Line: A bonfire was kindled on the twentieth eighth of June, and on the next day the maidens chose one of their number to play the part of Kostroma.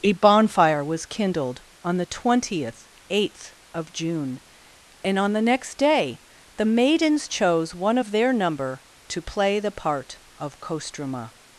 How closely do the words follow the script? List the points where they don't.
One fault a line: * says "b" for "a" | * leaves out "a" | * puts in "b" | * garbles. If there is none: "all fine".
all fine